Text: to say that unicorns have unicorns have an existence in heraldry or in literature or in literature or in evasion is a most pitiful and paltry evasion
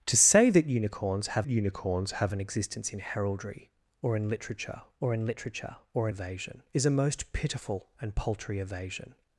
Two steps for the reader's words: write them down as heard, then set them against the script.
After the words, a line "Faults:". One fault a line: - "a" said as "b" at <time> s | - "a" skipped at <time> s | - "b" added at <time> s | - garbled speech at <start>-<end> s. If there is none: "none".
to say that unicorns have unicorns have an existence in heraldry or in literature or in literature or in evasion is a most pitiful and paltry evasion
Faults:
none